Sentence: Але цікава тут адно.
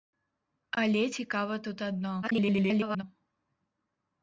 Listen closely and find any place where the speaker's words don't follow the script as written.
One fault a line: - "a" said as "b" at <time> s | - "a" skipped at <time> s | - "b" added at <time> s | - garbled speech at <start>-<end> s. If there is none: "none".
- garbled speech at 2.2-3.0 s